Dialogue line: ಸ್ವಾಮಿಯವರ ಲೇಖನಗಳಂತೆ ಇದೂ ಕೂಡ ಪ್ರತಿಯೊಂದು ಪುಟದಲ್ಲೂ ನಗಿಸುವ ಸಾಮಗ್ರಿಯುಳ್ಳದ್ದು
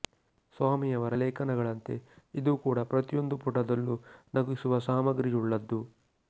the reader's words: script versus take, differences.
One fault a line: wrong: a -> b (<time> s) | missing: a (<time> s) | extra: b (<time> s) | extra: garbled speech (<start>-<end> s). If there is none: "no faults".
no faults